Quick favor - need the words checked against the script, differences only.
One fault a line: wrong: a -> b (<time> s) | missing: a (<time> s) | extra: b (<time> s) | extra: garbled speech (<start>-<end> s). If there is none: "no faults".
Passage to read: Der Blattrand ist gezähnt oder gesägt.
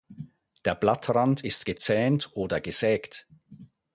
no faults